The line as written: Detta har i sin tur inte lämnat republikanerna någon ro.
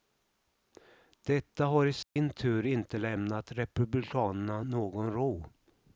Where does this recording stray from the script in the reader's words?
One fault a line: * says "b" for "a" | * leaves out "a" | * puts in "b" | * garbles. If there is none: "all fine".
all fine